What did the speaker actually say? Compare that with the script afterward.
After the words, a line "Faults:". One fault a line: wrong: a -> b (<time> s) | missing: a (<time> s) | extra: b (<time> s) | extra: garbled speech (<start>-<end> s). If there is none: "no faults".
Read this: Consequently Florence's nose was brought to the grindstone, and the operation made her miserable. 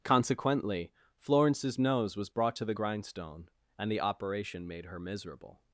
Consequently Florence's nose was brought to the grindstone, and the operation made her miserable.
Faults:
no faults